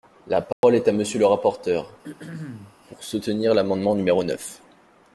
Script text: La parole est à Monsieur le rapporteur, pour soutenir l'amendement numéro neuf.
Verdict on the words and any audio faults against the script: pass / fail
fail